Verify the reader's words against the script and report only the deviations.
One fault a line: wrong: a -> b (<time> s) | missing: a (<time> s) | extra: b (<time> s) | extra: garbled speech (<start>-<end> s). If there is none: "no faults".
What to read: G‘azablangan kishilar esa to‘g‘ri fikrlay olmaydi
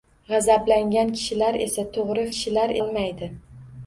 wrong: fikrlay -> kishilar (2.3 s)